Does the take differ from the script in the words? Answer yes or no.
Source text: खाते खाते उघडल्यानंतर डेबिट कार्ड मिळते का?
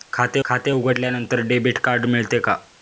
no